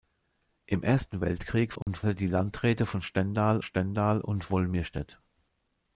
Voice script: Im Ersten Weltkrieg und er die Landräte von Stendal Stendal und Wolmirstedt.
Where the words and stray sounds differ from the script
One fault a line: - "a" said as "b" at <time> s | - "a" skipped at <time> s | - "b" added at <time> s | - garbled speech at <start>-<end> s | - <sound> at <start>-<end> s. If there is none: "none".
- dropout at 1.8-1.9 s